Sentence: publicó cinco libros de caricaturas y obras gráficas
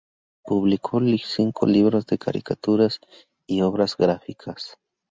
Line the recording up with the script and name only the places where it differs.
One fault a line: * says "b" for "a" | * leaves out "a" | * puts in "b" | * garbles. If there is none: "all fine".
all fine